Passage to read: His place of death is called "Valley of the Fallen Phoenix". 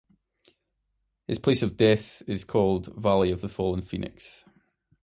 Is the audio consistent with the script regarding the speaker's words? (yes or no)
yes